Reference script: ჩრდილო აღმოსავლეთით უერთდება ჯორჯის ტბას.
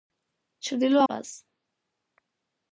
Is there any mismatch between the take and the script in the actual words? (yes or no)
yes